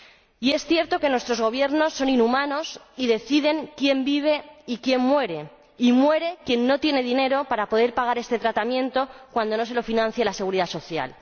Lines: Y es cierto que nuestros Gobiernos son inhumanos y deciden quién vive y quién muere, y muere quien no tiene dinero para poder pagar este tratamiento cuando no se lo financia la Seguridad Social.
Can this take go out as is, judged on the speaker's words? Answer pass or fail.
pass